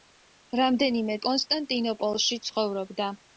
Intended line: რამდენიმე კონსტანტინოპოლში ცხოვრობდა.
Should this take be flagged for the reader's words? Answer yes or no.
no